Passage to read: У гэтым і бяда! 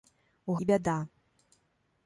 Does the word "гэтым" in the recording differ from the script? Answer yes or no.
yes